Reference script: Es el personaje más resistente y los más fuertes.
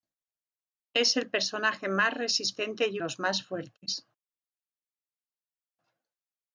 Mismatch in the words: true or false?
false